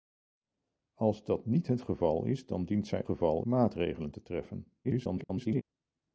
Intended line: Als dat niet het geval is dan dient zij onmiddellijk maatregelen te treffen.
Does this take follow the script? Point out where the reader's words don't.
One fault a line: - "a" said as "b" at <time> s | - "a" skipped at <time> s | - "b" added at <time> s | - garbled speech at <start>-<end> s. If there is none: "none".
- "onmiddellijk" said as "geval" at 3.0 s
- garbled speech at 4.8-5.6 s